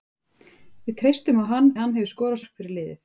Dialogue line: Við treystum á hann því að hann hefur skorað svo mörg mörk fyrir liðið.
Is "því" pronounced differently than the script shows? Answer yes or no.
yes